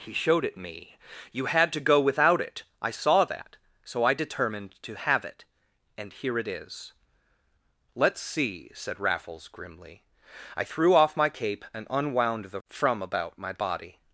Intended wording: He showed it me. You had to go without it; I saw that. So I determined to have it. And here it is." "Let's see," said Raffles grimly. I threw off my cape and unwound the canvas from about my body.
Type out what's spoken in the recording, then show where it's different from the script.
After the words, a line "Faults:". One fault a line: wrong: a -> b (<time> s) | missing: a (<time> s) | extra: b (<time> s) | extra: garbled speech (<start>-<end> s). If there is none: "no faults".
He showed it me. You had to go without it; I saw that. So I determined to have it. And here it is." "Let's see," said Raffles grimly. I threw off my cape and unwound the from about my body.
Faults:
missing: canvas (12.6 s)